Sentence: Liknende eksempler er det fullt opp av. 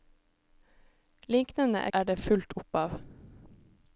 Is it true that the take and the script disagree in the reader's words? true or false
true